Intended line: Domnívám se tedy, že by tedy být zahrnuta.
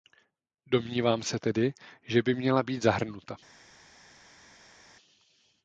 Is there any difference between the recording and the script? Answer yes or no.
yes